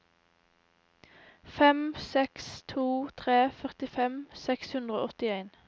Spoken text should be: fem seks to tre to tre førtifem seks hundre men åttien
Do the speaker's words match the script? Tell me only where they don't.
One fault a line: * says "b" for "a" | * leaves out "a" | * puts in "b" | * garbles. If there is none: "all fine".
* leaves out "to tre"
* says "og" for "men"